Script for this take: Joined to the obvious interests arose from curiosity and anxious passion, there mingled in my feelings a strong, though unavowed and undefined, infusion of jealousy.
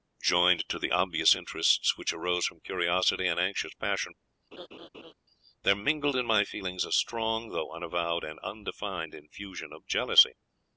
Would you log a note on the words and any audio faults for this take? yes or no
yes